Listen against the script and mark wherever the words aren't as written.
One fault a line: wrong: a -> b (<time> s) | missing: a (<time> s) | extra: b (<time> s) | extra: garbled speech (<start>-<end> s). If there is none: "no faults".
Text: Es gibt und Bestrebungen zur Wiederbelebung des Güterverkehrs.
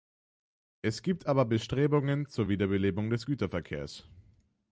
wrong: und -> aber (1.3 s)